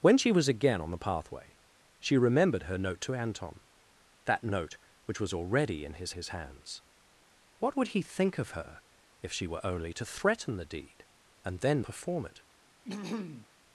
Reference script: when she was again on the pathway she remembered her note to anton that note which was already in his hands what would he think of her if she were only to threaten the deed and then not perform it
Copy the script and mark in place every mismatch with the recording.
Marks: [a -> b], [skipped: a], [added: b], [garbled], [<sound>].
when she was again on the pathway she remembered her note to anton that note which was already in his [added: his] hands what would he think of her if she were only to threaten the deed and then [skipped: not] perform it [throat clearing]